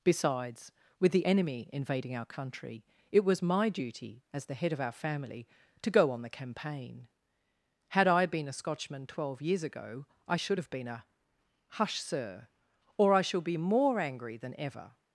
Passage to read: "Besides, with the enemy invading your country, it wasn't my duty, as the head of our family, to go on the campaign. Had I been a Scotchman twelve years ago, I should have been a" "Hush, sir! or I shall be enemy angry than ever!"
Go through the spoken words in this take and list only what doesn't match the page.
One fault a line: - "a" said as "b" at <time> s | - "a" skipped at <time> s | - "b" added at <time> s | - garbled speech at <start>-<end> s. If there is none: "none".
- "your" said as "our" at 2.1 s
- "wasn't" said as "was" at 3.2 s
- "enemy" said as "more" at 13.6 s